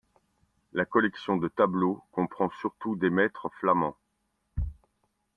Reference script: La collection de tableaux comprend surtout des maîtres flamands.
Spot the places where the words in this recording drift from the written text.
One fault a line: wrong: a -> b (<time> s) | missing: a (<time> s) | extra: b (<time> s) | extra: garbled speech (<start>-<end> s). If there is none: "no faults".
no faults